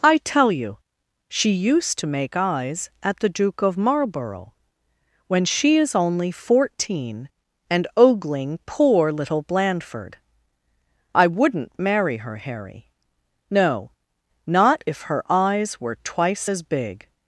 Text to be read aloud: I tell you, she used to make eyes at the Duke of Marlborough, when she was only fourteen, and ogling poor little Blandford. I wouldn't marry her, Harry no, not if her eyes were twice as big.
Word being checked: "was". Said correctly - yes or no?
no